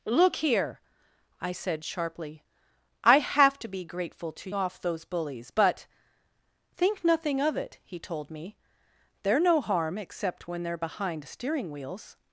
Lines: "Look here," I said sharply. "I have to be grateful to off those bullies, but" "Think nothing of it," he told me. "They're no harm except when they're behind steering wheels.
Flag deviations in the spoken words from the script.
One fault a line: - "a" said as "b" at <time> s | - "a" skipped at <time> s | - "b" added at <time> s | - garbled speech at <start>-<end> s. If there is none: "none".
none